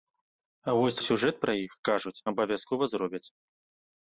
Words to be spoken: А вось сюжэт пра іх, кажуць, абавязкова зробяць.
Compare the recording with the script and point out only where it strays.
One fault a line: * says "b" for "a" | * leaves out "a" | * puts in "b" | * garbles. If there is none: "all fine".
all fine